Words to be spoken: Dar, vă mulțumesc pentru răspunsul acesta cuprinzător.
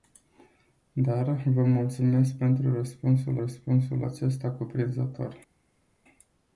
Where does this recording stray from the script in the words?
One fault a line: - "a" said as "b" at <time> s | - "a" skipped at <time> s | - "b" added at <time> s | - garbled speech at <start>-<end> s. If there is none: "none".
- "răspunsul" added at 3.4 s